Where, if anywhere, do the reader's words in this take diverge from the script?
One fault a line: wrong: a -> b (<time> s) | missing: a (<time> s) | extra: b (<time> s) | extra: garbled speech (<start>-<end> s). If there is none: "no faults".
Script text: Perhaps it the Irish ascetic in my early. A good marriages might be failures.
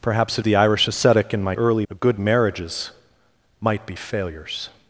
no faults